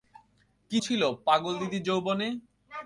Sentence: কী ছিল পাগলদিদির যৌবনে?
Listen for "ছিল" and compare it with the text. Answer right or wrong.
right